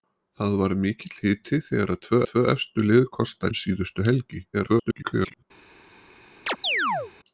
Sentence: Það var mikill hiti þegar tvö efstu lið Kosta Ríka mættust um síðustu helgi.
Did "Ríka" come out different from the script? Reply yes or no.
yes